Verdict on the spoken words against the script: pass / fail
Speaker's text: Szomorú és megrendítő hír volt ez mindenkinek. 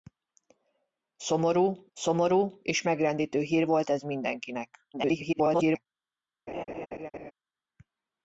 fail